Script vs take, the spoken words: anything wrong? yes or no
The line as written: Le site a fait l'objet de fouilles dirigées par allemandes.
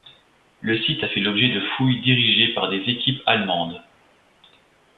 yes